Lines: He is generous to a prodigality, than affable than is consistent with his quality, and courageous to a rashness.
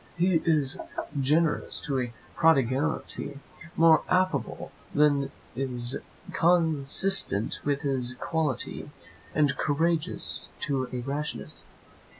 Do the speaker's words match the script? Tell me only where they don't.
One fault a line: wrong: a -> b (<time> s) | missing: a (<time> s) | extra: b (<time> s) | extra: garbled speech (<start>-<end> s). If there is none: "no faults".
wrong: than -> more (3.8 s)